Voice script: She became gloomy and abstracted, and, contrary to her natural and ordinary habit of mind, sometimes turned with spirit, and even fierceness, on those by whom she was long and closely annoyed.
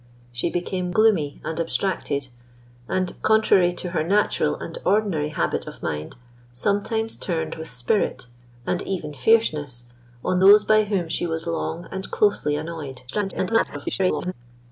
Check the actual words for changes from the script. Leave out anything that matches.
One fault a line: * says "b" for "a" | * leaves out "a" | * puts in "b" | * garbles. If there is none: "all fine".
* garbles